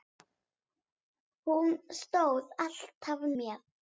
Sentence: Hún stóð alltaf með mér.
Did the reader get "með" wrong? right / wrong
wrong